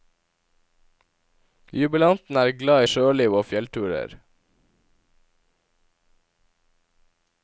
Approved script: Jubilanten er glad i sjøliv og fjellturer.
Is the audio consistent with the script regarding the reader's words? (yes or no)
yes